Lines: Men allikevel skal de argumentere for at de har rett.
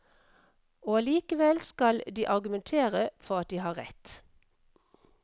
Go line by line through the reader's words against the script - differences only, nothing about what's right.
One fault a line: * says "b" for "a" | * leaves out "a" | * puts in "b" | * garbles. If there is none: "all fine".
* says "Og" for "Men"